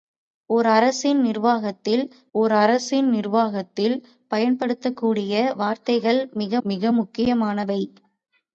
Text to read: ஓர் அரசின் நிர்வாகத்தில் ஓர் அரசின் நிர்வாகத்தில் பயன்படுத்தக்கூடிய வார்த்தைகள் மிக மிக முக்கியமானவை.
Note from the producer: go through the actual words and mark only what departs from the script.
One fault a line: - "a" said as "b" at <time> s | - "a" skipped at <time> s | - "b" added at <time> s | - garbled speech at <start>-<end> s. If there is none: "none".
none